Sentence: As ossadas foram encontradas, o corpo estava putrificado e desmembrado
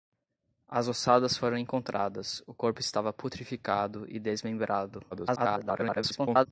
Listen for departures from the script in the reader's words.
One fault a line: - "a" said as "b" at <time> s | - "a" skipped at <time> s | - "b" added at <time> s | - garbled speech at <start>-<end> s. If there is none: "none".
- garbled speech at 5.1-6.5 s